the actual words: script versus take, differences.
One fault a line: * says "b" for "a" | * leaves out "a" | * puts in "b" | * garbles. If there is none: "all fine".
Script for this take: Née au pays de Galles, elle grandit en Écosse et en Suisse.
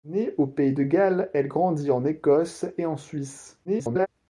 * garbles